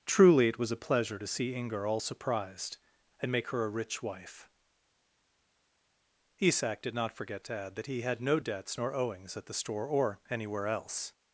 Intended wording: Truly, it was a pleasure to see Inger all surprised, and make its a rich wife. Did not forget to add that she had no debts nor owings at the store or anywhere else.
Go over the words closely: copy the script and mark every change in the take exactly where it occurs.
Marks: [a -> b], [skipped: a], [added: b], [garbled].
Truly, it was a pleasure to see Inger all surprised, and make [its -> her] a rich wife. [added: Isak] Did not forget to add that [she -> he] had no debts nor owings at the store or anywhere else.